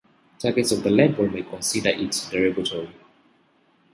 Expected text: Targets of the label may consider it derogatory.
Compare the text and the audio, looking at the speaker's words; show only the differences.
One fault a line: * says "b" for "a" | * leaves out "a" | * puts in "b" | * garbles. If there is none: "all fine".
all fine